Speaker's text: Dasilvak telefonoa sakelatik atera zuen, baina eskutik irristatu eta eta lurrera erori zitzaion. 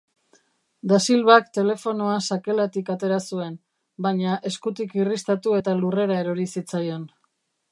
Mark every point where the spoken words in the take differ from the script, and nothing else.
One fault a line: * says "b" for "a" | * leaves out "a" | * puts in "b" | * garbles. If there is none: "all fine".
* leaves out "eta"